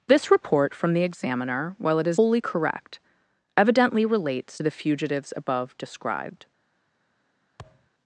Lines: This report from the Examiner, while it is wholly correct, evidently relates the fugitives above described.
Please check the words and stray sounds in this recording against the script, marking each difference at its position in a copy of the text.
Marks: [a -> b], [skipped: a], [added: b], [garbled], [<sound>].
This report from the Examiner, while it is wholly correct, evidently relates the fugitives above described. [thud]